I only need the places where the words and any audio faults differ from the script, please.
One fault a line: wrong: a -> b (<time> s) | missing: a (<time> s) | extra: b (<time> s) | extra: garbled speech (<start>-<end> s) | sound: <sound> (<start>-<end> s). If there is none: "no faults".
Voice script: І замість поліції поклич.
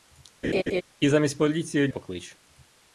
sound: laugh (0.4-0.8 s)